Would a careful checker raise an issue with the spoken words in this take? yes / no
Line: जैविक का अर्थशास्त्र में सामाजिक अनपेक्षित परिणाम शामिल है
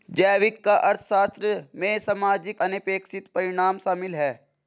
no